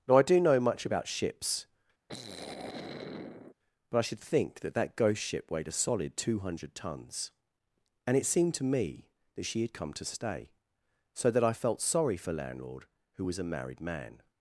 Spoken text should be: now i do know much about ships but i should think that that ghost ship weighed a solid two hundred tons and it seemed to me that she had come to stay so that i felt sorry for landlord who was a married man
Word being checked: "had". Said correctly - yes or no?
yes